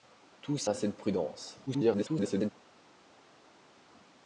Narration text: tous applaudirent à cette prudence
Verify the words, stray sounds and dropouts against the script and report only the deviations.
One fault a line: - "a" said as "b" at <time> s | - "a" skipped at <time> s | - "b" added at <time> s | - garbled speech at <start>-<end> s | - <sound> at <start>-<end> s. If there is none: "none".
- "applaudirent" skipped at 0.7 s
- garbled speech at 1.7-2.5 s